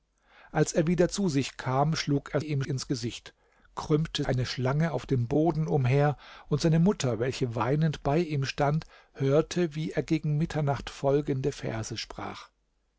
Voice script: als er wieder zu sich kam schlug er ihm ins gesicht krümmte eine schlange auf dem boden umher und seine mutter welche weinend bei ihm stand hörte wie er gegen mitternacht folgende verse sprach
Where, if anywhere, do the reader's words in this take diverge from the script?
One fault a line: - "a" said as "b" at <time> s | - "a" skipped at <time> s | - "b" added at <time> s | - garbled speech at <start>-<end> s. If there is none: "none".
none